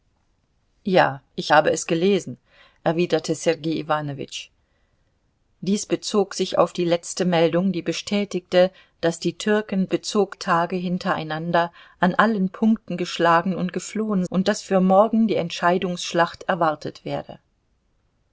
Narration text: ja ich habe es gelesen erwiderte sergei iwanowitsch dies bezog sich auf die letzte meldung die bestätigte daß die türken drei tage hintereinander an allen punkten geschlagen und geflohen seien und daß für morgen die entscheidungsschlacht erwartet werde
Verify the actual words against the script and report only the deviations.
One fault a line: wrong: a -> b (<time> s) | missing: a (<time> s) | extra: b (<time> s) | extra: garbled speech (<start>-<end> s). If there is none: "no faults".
wrong: drei -> bezog (9.9 s)
missing: seien (14.2 s)